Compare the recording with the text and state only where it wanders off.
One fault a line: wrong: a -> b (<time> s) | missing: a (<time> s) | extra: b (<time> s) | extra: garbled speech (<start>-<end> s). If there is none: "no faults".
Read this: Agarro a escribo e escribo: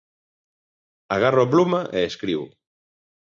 wrong: escribo -> pluma (1.5 s)